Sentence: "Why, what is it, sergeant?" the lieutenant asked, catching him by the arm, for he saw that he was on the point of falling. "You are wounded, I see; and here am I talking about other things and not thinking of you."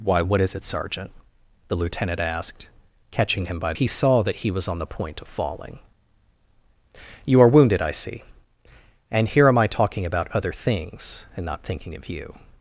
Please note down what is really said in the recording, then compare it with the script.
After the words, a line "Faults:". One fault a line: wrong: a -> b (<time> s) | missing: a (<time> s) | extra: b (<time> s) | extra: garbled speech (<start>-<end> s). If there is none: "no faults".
"Why, what is it, sergeant?" the lieutenant asked, catching him by he saw that he was on the point of falling. "You are wounded, I see; and here am I talking about other things and not thinking of you."
Faults:
missing: the arm for (3.7 s)